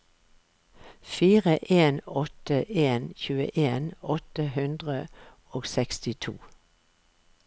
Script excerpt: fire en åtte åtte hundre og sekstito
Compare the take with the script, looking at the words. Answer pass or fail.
fail